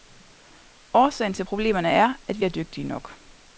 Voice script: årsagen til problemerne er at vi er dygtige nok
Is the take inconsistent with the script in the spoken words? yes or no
no